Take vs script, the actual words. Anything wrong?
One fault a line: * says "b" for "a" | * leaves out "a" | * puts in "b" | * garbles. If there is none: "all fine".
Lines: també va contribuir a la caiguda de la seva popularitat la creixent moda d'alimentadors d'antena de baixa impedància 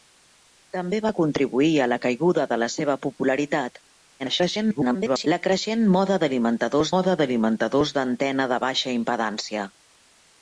* garbles
* puts in "moda d'alimentadors"